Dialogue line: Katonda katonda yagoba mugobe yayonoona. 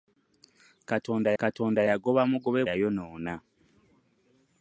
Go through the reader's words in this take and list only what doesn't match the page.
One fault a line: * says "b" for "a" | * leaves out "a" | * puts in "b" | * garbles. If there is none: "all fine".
all fine